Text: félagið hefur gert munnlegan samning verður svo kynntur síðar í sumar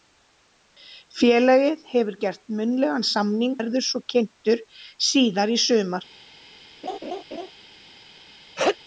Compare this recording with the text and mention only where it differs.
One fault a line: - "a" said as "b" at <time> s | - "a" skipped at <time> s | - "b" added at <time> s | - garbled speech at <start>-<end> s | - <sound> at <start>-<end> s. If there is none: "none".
- laugh at 6.8-7.5 s
- sneeze at 8.6-8.8 s